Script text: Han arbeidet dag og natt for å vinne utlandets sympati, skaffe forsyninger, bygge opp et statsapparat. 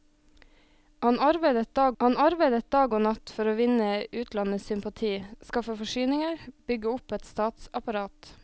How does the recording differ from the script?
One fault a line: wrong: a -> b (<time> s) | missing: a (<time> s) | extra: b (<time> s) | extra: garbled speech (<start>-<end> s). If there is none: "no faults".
extra: han arbeidet dag (2.0 s)